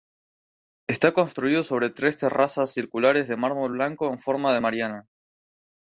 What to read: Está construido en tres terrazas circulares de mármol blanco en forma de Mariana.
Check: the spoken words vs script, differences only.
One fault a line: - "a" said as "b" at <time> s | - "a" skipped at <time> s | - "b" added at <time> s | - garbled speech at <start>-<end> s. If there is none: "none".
- "en" said as "sobre" at 1.6 s